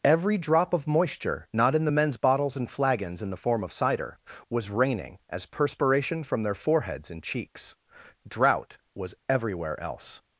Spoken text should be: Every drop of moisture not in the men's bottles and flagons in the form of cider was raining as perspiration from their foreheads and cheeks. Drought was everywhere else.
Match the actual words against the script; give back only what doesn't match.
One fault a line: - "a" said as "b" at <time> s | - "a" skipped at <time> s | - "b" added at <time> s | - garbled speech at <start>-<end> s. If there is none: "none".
none